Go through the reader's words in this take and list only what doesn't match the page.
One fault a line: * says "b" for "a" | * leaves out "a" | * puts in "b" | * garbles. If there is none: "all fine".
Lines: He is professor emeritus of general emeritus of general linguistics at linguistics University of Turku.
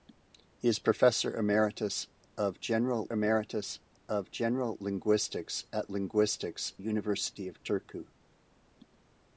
all fine